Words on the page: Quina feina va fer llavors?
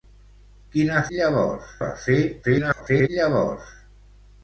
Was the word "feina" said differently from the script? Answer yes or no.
yes